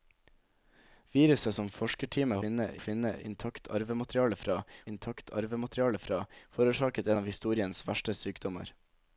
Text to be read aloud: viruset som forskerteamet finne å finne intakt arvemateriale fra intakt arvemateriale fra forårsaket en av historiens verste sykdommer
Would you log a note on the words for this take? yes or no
no